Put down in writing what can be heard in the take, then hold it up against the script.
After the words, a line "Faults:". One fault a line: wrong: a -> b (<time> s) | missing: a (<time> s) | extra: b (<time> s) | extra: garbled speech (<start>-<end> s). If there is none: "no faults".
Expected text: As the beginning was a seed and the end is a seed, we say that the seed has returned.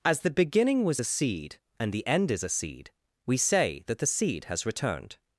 As the beginning was a seed and the end is a seed, we say that the seed has returned.
Faults:
no faults